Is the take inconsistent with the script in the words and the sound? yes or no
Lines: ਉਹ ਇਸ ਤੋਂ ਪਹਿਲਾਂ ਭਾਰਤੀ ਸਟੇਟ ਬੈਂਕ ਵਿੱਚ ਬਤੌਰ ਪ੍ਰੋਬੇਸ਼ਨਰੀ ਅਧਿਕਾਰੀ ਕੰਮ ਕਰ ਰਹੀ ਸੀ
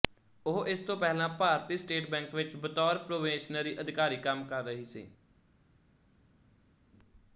no